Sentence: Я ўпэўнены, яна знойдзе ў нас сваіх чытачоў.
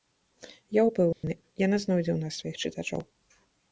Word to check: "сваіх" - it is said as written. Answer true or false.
true